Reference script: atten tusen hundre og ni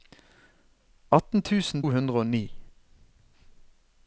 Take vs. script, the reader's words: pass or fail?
pass